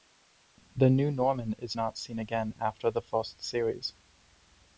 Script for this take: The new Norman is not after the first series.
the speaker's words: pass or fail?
fail